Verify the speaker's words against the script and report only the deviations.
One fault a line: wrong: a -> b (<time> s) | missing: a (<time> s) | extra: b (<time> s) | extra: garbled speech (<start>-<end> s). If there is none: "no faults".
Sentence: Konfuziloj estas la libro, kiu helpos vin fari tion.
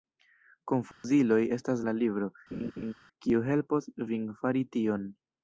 no faults